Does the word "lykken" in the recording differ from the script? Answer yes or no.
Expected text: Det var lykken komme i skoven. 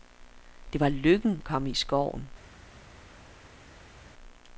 no